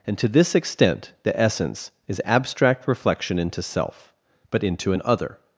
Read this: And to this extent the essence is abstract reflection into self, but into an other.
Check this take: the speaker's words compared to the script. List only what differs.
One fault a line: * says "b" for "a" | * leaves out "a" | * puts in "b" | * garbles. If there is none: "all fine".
all fine